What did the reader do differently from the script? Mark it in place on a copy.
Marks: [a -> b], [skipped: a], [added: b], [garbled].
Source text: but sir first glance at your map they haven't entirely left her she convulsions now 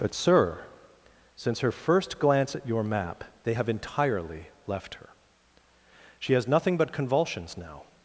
but sir [added: since her] first glance at your map they [haven't -> have] entirely left her she [added: has nothing but] convulsions now